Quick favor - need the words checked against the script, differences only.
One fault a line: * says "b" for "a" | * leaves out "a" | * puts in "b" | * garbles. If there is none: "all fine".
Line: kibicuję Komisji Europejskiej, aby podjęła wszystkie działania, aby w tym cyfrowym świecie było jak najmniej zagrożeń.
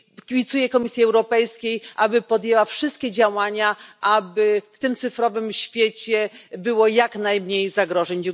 all fine